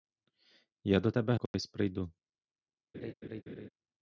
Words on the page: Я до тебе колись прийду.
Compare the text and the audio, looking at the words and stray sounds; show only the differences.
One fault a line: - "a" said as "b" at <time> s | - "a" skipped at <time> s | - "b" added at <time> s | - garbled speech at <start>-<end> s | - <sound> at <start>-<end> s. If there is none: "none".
- dropout at 1.5-1.5 s
- laugh at 2.9-3.7 s